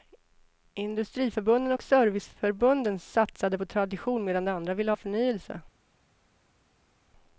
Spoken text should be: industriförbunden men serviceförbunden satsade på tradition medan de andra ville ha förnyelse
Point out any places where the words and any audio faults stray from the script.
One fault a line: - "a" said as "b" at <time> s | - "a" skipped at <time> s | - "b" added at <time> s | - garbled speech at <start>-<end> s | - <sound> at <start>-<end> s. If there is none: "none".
- "men" said as "och" at 1.7 s